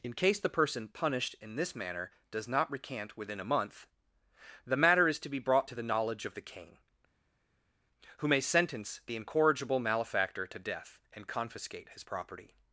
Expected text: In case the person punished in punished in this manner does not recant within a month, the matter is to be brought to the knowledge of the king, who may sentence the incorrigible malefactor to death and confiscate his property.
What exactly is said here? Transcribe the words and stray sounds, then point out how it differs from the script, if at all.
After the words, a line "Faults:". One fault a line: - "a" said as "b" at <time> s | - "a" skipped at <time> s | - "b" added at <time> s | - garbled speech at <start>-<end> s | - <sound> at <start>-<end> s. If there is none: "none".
In case the person punished in this manner does not recant within a month, the matter is to be brought to the knowledge of the king, who may sentence the incorrigible malefactor to death and confiscate his property.
Faults:
- "punished in" skipped at 1.6 s